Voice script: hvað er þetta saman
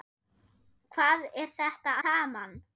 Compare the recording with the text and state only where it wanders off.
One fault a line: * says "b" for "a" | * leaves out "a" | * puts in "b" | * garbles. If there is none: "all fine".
all fine